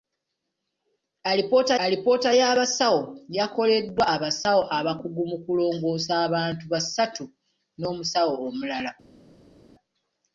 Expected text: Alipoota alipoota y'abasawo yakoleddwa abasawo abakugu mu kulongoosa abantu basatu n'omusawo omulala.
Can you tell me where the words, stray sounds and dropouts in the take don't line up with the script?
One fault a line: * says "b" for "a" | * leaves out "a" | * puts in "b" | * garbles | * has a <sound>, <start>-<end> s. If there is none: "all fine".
all fine